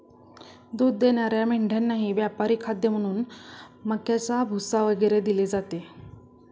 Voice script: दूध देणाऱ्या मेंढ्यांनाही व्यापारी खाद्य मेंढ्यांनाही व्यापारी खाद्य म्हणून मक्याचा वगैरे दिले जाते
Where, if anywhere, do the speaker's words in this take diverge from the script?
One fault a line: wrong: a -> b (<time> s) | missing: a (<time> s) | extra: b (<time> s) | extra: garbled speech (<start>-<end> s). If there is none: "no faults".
missing: मेंढ्यांनाही व्यापारी खाद्य (2.9 s)
extra: भुसा (4.5 s)